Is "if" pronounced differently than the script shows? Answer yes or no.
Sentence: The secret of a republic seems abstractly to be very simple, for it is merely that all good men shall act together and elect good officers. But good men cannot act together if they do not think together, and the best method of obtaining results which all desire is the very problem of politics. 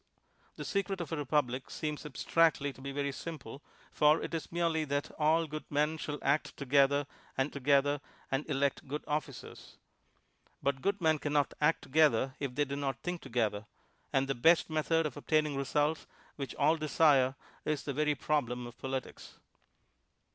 no